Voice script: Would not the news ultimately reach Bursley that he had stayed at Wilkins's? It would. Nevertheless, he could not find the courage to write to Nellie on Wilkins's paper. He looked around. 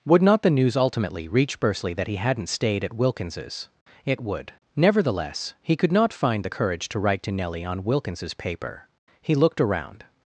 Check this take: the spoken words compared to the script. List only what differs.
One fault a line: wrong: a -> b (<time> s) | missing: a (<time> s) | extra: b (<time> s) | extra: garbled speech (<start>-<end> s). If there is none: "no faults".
wrong: had -> hadn't (2.1 s)